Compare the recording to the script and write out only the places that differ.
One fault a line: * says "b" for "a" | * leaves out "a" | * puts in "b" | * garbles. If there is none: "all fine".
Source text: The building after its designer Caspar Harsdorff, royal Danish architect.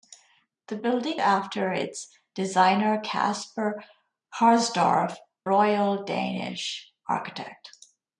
all fine